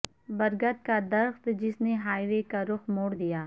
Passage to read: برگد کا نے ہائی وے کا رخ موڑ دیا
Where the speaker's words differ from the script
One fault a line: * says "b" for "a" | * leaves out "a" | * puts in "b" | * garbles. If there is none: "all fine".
* puts in "درخت جس"